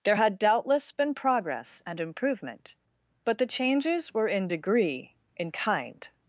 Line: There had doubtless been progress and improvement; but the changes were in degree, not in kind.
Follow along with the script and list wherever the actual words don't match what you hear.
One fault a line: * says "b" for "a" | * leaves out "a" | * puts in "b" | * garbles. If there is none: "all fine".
* leaves out "not"